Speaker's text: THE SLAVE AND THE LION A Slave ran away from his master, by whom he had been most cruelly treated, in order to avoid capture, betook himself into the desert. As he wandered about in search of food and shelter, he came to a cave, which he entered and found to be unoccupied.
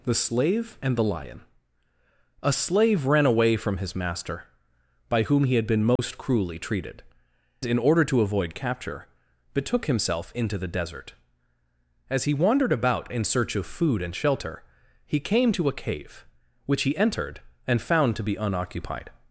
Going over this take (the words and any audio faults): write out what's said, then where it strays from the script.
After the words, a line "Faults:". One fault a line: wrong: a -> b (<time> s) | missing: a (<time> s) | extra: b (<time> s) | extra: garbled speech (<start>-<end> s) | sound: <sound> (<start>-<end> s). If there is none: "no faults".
THE SLAVE AND THE LION A Slave ran away from his master, by whom he had been most cruelly treated, in order to avoid capture, betook himself into the desert. As he wandered about in search of food and shelter, he came to a cave, which he entered and found to be unoccupied.
Faults:
sound: dropout (6.0-6.0 s)